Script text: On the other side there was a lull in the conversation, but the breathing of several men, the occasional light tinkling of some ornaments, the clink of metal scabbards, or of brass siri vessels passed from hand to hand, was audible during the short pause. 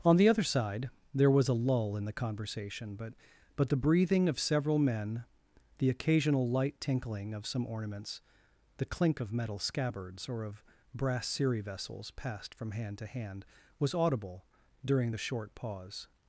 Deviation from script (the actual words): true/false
true